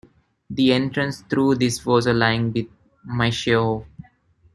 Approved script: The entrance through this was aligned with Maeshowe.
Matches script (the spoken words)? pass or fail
pass